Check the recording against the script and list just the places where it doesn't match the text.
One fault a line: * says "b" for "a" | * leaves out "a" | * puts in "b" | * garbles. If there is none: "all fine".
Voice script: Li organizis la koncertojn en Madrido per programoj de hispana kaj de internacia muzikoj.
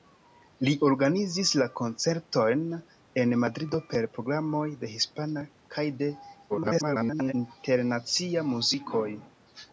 * garbles